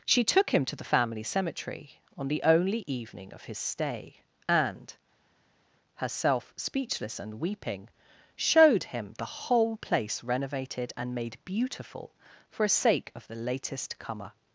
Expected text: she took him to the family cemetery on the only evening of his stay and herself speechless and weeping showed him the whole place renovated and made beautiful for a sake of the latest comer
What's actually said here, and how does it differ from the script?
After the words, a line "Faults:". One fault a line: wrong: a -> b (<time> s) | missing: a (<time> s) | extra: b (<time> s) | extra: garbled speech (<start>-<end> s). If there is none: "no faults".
she took him to the family cemetery on the only evening of his stay and herself speechless and weeping showed him the whole place renovated and made beautiful for a sake of the latest comer
Faults:
no faults